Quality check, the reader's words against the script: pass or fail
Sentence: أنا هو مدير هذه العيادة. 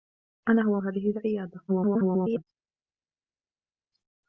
fail